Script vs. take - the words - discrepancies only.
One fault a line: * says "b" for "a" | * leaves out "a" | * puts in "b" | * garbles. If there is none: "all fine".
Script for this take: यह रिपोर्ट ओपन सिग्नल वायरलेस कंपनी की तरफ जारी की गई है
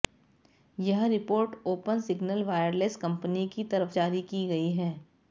all fine